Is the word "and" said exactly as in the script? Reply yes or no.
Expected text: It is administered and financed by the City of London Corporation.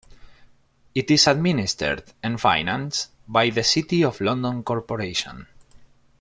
yes